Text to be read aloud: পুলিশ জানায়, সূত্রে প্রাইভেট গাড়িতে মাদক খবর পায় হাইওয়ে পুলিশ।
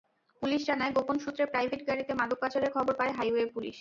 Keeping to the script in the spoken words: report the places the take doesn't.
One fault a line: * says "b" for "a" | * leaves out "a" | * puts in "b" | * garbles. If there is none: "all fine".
* puts in "গোপন"
* puts in "পাচারের"